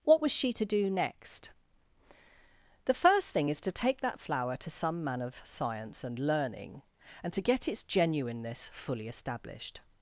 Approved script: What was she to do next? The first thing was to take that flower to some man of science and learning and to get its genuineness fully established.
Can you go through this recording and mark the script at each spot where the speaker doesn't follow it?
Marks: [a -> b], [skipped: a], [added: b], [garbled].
What was she to do next? The first thing [was -> is] to take that flower to some man of science and learning and to get its genuineness fully established.